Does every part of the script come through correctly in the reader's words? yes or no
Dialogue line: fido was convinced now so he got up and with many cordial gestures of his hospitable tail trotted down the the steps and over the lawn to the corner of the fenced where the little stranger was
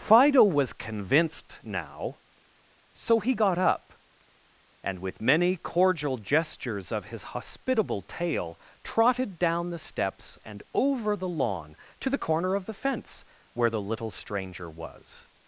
no